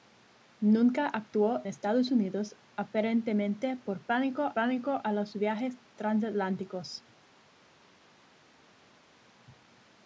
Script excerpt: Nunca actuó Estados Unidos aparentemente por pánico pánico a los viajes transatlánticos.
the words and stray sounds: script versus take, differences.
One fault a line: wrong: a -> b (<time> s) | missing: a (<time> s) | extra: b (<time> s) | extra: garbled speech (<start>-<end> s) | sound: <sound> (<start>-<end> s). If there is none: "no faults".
no faults